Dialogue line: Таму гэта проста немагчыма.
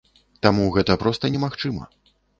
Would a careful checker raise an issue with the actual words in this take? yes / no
no